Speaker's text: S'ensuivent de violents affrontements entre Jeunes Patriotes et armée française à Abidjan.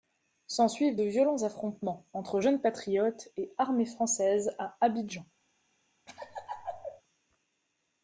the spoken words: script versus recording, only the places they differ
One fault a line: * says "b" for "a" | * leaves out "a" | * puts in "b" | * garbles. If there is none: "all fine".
all fine